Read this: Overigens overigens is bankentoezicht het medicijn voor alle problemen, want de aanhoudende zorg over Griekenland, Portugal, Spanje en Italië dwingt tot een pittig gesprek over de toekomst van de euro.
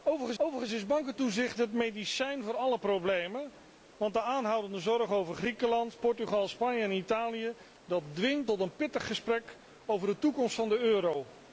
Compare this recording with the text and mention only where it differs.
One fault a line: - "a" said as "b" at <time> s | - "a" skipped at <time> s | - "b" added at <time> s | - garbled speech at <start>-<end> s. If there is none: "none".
none